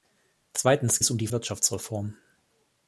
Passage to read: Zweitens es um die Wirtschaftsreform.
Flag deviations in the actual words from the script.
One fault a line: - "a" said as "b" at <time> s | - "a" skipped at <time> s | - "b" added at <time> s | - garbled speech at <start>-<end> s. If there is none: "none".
none